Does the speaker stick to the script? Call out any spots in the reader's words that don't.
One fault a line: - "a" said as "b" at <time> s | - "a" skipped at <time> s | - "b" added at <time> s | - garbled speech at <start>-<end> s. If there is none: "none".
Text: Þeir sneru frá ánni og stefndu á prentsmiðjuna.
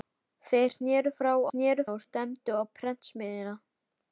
- "ánni" said as "sneru" at 1.5 s